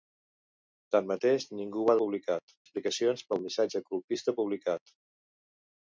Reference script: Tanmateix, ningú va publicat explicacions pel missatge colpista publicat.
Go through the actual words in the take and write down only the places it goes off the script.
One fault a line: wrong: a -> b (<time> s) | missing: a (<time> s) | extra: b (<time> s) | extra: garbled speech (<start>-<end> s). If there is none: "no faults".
no faults